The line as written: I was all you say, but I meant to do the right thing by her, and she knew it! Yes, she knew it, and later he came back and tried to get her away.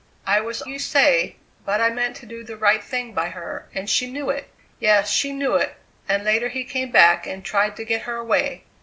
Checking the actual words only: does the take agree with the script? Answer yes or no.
no